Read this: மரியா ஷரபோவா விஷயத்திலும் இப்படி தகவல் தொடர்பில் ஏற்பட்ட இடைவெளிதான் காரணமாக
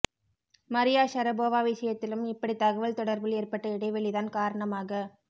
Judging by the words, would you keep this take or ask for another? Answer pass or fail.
pass